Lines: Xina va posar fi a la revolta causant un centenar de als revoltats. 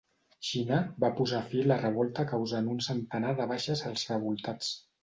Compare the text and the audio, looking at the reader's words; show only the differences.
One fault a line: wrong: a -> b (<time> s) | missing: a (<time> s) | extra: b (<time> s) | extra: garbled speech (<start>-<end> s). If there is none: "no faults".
extra: baixes (3.5 s)